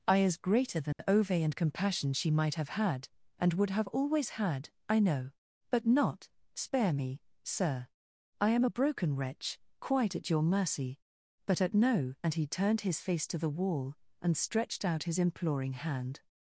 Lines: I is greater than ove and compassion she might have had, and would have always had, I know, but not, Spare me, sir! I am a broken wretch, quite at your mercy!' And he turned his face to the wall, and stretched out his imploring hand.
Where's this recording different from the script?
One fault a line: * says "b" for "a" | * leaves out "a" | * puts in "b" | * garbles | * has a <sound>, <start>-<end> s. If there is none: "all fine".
* has a dropout, 0.9-1.0 s
* puts in "but at no"